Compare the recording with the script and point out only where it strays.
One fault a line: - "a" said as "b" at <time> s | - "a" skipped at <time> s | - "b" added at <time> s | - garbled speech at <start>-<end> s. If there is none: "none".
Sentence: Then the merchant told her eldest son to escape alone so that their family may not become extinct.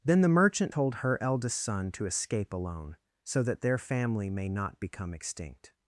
none